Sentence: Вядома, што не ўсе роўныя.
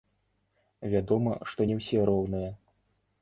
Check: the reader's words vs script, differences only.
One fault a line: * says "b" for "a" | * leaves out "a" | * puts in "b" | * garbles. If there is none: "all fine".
all fine